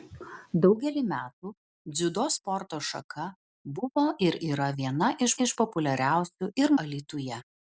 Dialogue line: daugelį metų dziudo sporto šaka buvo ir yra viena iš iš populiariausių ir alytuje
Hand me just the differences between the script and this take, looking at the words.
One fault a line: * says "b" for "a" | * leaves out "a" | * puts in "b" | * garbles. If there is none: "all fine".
all fine